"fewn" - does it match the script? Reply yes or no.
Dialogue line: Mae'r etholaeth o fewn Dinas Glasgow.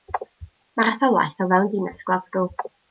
yes